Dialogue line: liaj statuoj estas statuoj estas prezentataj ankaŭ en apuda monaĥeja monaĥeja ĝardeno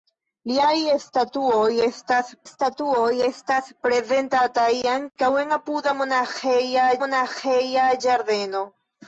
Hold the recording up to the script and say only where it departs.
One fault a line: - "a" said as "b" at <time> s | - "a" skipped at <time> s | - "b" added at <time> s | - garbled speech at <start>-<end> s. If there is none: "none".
none